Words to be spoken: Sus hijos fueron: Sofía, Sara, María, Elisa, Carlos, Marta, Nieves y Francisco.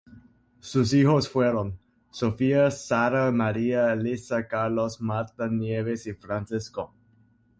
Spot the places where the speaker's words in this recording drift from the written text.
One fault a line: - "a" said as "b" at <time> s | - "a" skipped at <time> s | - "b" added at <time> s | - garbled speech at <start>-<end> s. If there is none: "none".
none